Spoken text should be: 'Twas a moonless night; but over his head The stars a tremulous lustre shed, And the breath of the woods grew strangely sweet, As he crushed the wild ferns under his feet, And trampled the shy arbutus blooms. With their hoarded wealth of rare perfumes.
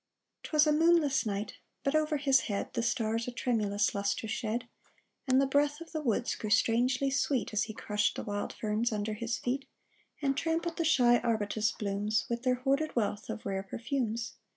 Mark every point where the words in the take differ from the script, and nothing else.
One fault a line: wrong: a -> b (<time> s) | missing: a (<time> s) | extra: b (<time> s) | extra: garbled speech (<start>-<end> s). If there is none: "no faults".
no faults